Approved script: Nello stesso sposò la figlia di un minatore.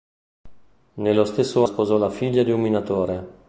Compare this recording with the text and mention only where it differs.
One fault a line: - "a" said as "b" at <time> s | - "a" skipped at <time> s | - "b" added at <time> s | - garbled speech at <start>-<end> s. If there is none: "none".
none